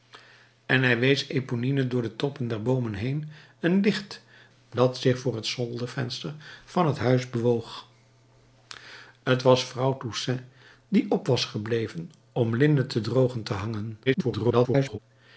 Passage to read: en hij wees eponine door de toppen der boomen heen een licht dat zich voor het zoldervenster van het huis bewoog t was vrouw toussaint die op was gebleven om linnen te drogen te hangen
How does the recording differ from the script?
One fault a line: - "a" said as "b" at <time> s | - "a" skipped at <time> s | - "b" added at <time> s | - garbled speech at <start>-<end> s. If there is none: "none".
- garbled speech at 14.1-15.0 s